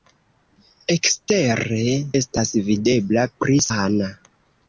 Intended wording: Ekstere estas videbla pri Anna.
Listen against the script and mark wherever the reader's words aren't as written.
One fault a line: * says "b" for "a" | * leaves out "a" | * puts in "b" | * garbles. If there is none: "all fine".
all fine